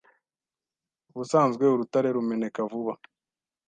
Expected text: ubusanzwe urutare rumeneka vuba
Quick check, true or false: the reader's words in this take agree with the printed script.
true